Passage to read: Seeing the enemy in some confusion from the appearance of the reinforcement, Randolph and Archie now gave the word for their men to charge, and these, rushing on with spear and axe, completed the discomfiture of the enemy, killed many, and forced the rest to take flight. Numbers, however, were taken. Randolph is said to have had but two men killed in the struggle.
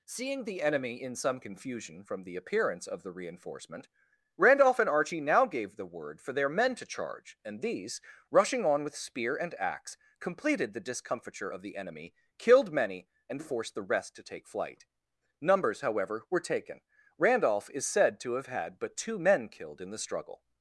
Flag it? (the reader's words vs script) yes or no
no